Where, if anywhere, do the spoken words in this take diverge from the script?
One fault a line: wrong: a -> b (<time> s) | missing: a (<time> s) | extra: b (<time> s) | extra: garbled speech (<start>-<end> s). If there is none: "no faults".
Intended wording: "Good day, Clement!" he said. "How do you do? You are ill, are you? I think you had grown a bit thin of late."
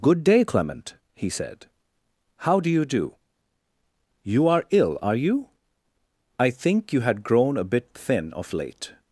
no faults